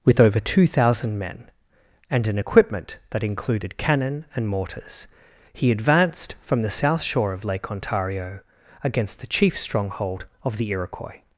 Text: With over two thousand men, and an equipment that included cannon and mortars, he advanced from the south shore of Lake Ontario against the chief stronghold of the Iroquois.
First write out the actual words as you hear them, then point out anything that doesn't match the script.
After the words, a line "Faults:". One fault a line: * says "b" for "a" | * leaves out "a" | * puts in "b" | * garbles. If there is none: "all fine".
With over two thousand men, and an equipment that included cannon and mortars, he advanced from the south shore of Lake Ontario against the chief stronghold of the Iroquois.
Faults:
all fine